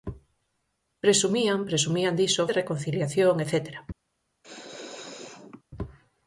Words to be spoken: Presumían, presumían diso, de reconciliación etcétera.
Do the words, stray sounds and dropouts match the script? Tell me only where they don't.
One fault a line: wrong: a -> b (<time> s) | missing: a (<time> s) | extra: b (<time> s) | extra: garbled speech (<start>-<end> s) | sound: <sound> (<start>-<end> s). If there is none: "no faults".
sound: sneeze (4.4-5.6 s)